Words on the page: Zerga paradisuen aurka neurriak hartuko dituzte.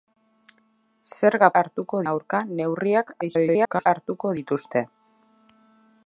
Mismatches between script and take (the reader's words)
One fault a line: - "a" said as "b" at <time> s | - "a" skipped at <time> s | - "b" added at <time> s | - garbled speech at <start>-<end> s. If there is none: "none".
- "paradisuen" said as "hartuko" at 1.6 s
- garbled speech at 3.2-3.9 s